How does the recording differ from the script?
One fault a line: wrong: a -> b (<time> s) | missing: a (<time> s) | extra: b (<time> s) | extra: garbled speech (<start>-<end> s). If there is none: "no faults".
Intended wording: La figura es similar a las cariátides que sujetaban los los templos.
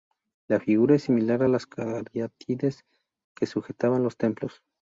missing: los (4.2 s)